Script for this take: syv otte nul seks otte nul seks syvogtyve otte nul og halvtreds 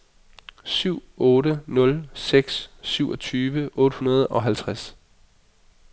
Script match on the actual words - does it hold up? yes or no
no